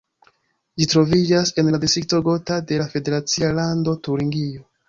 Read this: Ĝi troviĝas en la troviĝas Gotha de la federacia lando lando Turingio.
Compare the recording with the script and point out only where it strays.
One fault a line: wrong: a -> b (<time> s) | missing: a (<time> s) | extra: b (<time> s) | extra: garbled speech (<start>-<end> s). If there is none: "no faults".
wrong: troviĝas -> distrikto (1.8 s)
missing: lando (4.0 s)